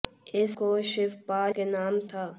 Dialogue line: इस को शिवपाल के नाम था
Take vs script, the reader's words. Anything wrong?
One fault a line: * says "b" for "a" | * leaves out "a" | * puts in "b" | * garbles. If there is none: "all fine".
all fine